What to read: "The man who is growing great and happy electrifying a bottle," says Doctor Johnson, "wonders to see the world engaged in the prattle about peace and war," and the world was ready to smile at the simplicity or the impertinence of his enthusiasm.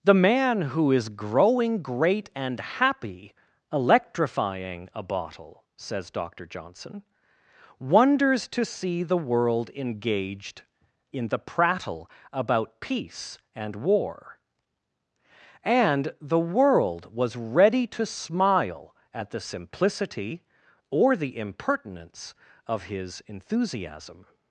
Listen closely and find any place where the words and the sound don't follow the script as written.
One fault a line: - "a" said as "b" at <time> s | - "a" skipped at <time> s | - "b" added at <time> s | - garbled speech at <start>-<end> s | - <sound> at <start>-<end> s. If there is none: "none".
none